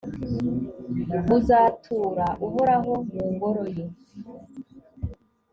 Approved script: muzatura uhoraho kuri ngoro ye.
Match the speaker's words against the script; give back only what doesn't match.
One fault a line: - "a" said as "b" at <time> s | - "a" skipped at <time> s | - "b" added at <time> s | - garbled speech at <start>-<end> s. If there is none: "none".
- "kuri" said as "mu" at 3.1 s